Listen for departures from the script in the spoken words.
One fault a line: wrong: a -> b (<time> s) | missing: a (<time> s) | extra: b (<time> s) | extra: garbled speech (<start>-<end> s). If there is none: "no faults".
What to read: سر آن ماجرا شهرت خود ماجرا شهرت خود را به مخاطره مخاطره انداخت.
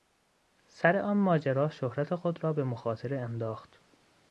missing: ماجرا شهرت خود (2.4 s)
missing: مخاطره (3.2 s)